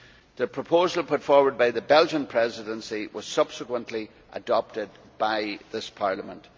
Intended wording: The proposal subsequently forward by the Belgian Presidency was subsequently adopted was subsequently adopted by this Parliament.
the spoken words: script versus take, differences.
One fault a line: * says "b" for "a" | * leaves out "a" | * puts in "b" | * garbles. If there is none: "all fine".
* says "put" for "subsequently"
* leaves out "was subsequently adopted"